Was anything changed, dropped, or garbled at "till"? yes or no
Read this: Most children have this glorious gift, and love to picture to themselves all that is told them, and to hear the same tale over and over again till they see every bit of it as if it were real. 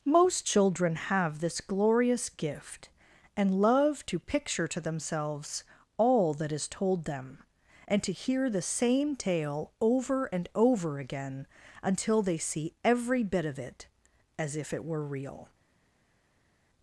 yes